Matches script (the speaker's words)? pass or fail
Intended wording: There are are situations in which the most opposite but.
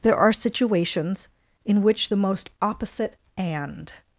fail